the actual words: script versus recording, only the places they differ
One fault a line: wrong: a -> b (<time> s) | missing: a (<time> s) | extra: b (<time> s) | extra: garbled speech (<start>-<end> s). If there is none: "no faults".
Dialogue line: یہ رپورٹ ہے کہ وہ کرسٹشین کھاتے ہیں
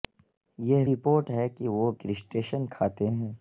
no faults